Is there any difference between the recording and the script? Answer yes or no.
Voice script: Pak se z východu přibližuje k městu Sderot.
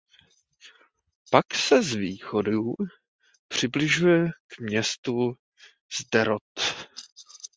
no